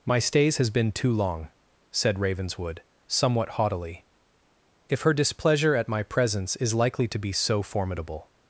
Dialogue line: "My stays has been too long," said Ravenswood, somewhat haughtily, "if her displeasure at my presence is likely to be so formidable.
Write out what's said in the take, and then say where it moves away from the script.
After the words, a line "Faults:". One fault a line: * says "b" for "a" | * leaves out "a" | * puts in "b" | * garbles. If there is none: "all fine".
"My stays has been too long," said Ravenswood, somewhat haughtily, "if her displeasure at my presence is likely to be so formidable.
Faults:
all fine